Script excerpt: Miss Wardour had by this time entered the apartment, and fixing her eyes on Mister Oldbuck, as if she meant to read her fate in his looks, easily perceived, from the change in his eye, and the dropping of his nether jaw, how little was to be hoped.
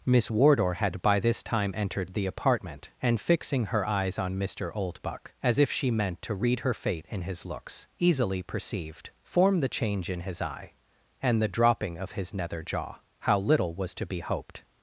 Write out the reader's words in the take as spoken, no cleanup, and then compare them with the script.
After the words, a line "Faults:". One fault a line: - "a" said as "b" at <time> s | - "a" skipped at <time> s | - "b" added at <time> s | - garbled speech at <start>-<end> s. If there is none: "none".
Miss Wardour had by this time entered the apartment, and fixing her eyes on Mister Oldbuck, as if she meant to read her fate in his looks, easily perceived, form the change in his eye, and the dropping of his nether jaw, how little was to be hoped.
Faults:
- "from" said as "form" at 9.2 s